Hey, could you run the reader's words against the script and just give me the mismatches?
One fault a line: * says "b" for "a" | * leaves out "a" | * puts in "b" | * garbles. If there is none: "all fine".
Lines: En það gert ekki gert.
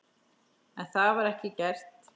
* says "var" for "gert"